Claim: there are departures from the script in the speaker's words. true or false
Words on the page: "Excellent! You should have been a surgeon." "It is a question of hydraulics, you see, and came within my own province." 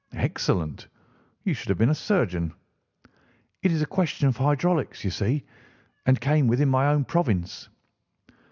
false